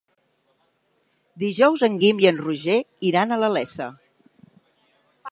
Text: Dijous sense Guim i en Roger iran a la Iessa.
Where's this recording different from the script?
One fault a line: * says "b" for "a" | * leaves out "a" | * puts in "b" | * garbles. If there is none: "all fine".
* says "en" for "sense"